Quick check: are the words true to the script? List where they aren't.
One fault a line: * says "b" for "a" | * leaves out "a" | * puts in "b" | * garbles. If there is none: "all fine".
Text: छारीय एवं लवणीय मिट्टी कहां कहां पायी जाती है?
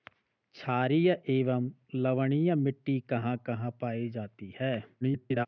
* garbles